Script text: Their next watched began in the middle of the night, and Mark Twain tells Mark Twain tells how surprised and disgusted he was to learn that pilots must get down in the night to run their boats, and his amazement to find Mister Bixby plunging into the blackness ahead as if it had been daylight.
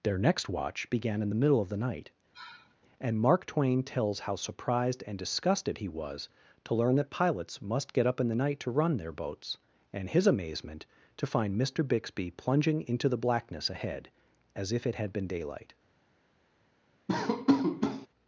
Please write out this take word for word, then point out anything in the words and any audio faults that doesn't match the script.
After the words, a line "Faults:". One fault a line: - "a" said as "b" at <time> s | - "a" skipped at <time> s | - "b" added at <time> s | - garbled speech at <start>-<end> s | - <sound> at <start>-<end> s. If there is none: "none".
Their next watch began in the middle of the night, and Mark Twain tells how surprised and disgusted he was to learn that pilots must get up in the night to run their boats, and his amazement to find Mister Bixby plunging into the blackness ahead as if it had been daylight.
Faults:
- "watched" said as "watch" at 0.5 s
- sigh at 2.3-2.8 s
- "Mark Twain tells" skipped at 4.2 s
- "down" said as "up" at 8.1 s
- laugh at 17.1-18.1 s